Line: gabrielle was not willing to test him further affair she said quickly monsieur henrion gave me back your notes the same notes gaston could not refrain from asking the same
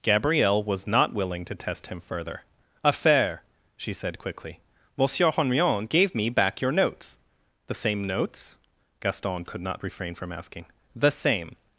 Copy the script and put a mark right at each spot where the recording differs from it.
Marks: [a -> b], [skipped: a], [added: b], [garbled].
gabrielle was not willing to test him further affair she said quickly monsieur henrion gave me back your notes the same notes gaston could not refrain from asking the same